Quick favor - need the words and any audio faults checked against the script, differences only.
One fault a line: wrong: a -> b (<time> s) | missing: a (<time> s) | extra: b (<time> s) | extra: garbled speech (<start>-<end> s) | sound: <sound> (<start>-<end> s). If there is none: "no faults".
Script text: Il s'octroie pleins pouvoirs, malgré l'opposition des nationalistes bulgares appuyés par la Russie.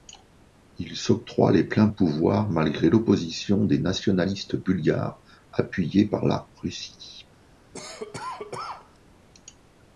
extra: les (1.5 s)
sound: cough (7.7-9.0 s)